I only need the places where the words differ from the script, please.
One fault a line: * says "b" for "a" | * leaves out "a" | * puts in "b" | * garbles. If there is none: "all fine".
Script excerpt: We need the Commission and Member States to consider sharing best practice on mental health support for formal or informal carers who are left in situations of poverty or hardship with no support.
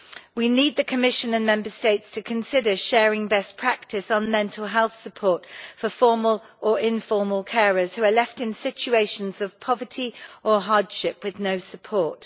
all fine